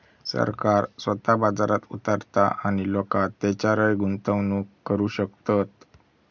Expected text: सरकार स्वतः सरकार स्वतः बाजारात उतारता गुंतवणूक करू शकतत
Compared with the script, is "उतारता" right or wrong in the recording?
wrong